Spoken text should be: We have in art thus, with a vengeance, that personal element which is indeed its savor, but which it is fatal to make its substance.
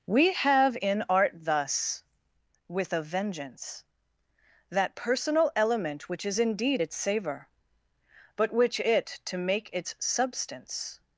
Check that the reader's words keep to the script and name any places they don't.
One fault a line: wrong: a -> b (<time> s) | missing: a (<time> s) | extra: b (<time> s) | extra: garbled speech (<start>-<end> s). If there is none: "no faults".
missing: is fatal (9.2 s)